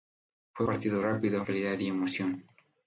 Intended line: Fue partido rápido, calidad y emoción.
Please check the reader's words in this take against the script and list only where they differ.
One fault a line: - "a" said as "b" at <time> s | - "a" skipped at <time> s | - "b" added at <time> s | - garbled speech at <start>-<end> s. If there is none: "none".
none